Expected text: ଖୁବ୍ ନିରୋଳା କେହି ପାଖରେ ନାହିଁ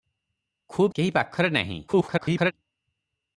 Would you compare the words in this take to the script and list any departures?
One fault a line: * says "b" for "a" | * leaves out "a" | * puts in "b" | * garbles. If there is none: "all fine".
* leaves out "ନିରୋଳା"
* garbles